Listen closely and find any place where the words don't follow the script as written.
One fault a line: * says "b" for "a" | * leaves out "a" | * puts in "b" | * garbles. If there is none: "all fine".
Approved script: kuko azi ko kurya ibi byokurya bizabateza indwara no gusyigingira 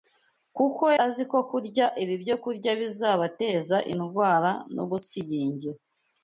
all fine